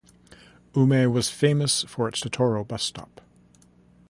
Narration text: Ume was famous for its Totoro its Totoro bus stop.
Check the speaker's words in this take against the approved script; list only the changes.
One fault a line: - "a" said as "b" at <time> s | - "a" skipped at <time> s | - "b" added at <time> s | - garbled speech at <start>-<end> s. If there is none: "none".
- "its Totoro" skipped at 2.7 s